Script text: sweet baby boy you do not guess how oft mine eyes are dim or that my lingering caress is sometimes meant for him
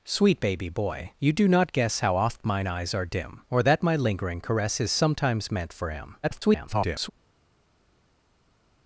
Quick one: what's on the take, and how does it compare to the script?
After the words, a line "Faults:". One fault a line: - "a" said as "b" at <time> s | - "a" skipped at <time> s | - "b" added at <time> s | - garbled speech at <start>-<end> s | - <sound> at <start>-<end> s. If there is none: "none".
sweet baby boy you do not guess how oft mine eyes are dim or that my lingering caress is sometimes meant for him [garbled]
Faults:
- garbled speech at 6.2-7.1 s